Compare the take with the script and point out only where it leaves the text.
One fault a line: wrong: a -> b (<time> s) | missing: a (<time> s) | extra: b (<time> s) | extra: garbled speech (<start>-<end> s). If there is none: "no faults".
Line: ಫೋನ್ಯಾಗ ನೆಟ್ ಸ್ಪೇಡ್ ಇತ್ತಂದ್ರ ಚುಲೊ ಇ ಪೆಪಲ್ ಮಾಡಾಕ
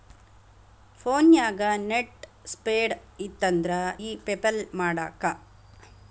missing: ಚುಲೊ (3.7 s)